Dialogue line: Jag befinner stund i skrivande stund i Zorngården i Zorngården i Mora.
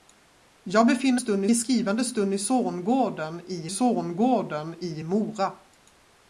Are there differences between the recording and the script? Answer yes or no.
no